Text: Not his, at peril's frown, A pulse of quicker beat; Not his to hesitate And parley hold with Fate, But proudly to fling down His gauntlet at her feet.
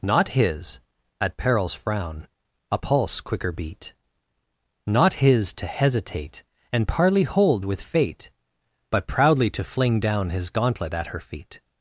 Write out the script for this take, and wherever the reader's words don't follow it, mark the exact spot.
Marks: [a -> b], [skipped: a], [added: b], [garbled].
Not his, at peril's frown, A pulse [skipped: of] quicker beat; Not his to hesitate And parley hold with Fate, But proudly to fling down His gauntlet at her feet.